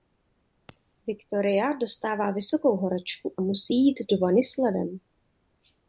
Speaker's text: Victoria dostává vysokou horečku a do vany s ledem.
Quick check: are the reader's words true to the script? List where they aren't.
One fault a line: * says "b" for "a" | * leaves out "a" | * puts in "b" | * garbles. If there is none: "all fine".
* puts in "musí jít"